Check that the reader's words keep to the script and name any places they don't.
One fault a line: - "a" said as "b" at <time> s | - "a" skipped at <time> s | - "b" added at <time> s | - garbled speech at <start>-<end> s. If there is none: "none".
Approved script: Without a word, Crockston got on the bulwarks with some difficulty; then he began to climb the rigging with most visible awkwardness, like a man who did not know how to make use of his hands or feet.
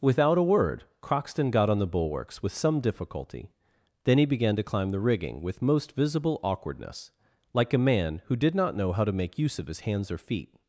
none